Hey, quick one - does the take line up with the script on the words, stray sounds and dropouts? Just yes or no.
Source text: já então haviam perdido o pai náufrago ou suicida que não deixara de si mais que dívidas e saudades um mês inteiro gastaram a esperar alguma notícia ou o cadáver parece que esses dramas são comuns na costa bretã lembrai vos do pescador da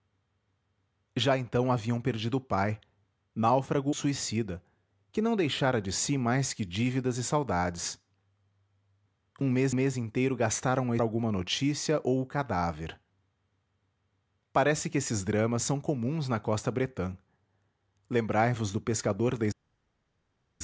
no